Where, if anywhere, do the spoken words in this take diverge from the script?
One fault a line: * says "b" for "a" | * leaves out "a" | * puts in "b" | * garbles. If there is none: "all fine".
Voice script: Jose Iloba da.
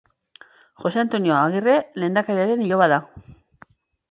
* puts in "Antonio Agirre lehendakariaren"